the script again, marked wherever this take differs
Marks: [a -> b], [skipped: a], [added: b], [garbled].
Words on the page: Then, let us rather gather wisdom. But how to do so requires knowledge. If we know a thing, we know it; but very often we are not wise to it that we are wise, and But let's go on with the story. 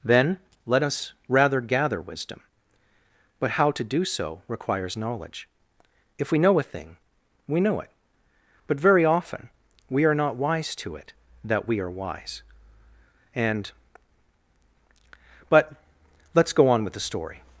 Then, let us rather gather wisdom. But how to do so requires knowledge. If we know a thing, we know it; but very often we are not wise to it that we are wise, and But let's go on with the story.